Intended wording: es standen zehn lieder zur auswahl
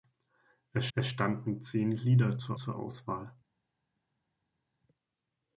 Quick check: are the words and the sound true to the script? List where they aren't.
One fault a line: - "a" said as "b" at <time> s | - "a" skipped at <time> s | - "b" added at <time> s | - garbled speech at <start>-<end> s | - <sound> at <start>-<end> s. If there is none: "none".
- "es" added at 0.9 s
- "zur" added at 2.5 s